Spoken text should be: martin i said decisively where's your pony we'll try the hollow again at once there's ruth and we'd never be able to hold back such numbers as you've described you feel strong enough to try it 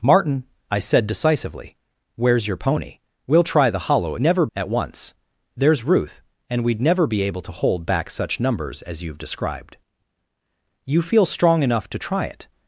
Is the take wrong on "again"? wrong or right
wrong